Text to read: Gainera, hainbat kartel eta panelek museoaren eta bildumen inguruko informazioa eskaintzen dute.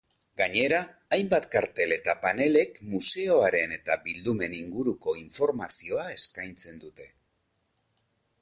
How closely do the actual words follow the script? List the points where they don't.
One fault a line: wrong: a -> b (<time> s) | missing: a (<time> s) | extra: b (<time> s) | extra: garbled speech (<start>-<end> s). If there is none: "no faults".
no faults